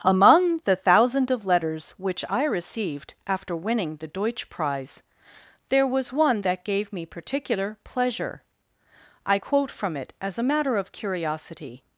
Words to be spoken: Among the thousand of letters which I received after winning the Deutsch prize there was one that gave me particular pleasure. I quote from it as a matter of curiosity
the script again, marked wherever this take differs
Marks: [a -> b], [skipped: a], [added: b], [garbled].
Among the thousand of letters which I received after winning the Deutsch prize there was one that gave me particular pleasure. I quote from it as a matter of curiosity